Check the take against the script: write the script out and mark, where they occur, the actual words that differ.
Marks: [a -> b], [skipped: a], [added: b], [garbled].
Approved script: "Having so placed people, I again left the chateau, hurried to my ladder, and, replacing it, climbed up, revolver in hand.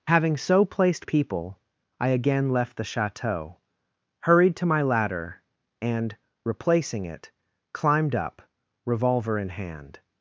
"Having so placed people, I again left the chateau, hurried to my ladder, and, replacing it, climbed up, revolver in hand.